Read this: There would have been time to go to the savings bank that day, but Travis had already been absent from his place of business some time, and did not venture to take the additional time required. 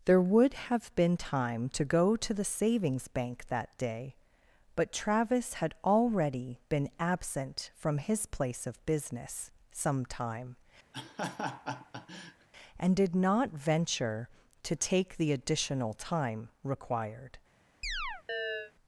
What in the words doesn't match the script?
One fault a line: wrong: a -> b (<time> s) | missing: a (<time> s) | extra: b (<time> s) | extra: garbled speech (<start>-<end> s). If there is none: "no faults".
no faults